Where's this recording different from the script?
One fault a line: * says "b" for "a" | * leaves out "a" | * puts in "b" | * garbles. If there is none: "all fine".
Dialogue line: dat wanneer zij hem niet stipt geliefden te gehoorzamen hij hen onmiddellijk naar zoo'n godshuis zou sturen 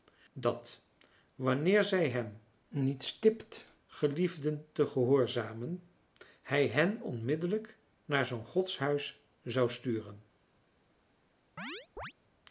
all fine